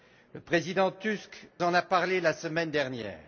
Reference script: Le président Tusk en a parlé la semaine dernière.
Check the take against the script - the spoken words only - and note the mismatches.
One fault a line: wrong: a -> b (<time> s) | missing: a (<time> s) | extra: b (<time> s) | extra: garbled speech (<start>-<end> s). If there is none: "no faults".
no faults